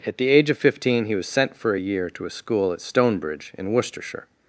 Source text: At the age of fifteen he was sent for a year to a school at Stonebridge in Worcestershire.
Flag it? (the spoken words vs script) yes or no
no